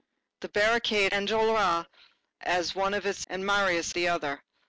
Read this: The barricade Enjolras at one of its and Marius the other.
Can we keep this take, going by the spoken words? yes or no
yes